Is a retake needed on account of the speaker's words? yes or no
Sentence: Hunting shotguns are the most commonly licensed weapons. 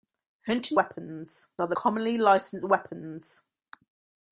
yes